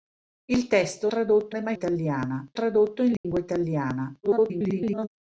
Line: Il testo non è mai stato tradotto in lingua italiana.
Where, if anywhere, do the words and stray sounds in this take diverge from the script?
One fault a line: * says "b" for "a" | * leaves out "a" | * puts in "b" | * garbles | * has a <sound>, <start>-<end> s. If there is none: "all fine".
* says "tradotto" for "non"
* says "italiana" for "stato"
* has a dropout, 3.2-3.2 s
* garbles